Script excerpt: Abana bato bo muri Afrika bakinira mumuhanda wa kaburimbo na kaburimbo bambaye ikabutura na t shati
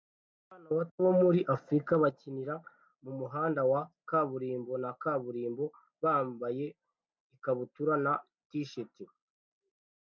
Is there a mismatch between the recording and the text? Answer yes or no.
no